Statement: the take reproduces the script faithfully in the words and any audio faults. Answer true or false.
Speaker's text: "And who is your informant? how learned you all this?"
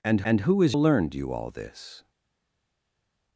false